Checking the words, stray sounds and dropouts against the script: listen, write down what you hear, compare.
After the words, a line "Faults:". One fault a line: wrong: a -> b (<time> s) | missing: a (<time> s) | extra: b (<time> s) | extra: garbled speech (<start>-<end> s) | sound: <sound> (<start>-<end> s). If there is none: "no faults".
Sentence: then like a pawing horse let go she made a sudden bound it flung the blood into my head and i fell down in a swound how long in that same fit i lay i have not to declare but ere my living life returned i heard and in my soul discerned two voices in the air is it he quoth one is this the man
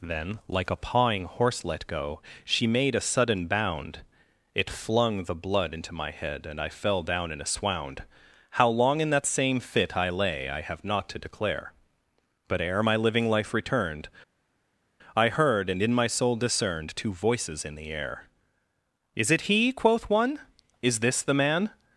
then like a pawing horse let go she made a sudden bound it flung the blood into my head and i fell down in a swound how long in that same fit i lay i have not to declare but ere my living life returned i heard and in my soul discerned two voices in the air is it he quoth one is this the man
Faults:
no faults